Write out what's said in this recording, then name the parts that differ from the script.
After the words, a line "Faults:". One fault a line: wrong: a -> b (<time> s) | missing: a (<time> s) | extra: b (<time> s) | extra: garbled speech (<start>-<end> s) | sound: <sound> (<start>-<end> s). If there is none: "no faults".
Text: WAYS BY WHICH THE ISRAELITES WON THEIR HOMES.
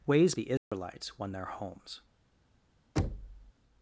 WAYS THE ISRAELITES WON THEIR HOMES.
Faults:
missing: BY WHICH (0.3 s)
sound: dropout (0.6-0.7 s)
sound: thud (3.0-3.5 s)